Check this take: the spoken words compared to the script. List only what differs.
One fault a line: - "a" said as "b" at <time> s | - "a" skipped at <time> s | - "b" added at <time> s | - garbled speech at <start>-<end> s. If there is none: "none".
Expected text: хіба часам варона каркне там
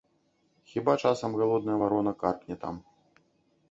- "галодная" added at 1.4 s